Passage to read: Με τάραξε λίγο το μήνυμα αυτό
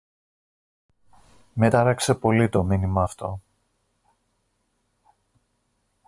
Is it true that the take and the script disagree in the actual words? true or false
true